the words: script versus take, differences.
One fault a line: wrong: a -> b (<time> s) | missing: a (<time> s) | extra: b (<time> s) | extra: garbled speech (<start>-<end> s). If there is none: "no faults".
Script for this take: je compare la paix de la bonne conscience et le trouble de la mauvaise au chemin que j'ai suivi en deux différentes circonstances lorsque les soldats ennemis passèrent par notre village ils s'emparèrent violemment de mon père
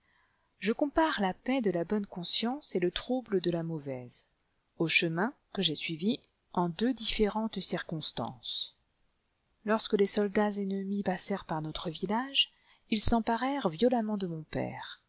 no faults